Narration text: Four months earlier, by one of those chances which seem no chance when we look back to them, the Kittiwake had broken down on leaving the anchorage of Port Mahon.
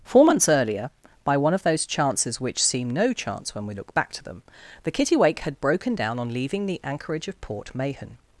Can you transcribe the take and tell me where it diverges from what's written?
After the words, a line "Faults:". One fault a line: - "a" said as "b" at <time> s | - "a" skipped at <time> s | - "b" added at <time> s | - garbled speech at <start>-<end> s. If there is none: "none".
Four months earlier, by one of those chances which seem no chance when we look back to them, the Kittiwake had broken down on leaving the anchorage of Port Mahon.
Faults:
none